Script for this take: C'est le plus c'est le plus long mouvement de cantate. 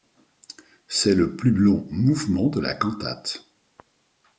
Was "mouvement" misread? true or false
false